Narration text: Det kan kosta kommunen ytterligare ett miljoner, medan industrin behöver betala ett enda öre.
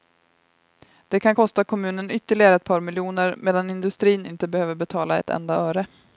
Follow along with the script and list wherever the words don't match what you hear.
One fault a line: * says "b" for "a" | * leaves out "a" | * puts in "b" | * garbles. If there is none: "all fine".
* puts in "par"
* puts in "inte"